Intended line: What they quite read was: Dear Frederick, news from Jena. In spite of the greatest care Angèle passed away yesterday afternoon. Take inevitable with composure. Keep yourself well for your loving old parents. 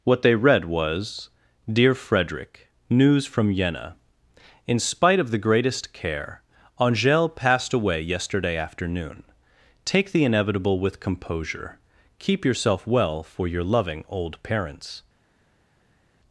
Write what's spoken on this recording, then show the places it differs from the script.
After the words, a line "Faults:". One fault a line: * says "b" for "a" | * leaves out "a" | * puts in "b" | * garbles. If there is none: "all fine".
What they read was: Dear Frederick, news from Jena. In spite of the greatest care Angèle passed away yesterday afternoon. Take the inevitable with composure. Keep yourself well for your loving old parents.
Faults:
* leaves out "quite"
* puts in "the"